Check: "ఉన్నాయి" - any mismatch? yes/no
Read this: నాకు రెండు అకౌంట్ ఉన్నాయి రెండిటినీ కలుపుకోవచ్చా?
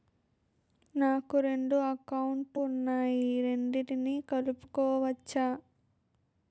no